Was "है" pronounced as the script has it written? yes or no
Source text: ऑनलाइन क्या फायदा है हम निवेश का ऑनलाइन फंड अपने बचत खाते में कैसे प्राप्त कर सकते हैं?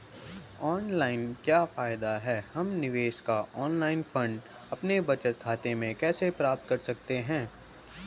yes